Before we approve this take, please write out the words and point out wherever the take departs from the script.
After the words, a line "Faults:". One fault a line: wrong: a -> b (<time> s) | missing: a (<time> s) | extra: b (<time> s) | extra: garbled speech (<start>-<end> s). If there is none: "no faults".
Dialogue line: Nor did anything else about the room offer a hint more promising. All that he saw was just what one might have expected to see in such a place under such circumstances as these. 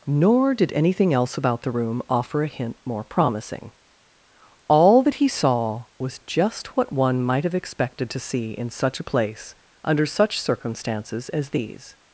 Nor did anything else about the room offer a hint more promising. All that he saw was just what one might have expected to see in such a place under such circumstances as these.
Faults:
no faults